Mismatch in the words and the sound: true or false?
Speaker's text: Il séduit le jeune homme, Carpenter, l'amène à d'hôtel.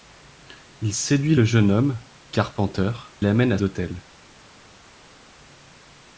false